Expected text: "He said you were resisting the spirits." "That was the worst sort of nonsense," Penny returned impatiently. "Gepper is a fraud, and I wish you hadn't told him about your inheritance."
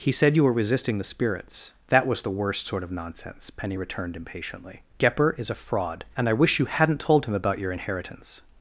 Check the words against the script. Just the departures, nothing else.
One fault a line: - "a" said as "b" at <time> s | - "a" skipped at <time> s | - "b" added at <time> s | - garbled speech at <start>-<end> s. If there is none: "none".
none